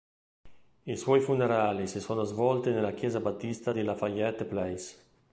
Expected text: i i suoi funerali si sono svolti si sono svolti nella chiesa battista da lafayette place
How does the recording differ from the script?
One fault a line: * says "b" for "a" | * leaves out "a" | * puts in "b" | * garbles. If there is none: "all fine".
* leaves out "i"
* leaves out "si sono svolti"
* says "di" for "da"